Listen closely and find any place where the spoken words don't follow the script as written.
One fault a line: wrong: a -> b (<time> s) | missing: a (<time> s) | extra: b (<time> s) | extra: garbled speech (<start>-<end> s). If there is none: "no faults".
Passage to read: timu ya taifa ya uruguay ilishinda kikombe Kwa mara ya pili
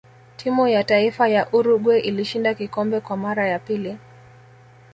no faults